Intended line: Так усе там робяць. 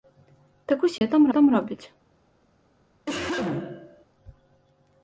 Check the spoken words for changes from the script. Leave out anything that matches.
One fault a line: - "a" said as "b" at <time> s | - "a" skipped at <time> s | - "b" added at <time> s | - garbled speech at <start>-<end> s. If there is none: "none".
- "там" added at 1.3 s